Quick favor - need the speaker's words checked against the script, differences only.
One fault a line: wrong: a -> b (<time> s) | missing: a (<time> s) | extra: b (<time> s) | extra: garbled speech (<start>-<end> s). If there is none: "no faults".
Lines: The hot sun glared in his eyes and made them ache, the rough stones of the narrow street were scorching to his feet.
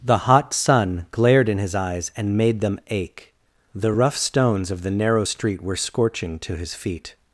no faults